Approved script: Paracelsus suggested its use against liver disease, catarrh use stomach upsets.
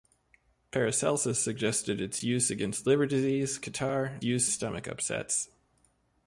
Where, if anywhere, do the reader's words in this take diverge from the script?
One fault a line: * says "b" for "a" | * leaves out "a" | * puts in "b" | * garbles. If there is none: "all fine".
all fine